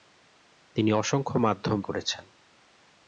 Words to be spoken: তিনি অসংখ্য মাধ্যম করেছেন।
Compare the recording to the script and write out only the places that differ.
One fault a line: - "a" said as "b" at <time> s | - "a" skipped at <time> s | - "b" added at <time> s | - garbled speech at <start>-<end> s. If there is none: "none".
none